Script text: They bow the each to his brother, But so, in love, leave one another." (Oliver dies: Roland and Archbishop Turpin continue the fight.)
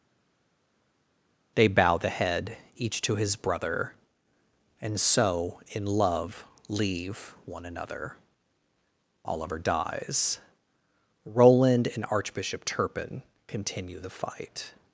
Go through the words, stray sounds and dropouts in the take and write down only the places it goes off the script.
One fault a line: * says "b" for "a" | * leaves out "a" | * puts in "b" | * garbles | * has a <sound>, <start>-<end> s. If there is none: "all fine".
* puts in "head"
* says "And" for "But"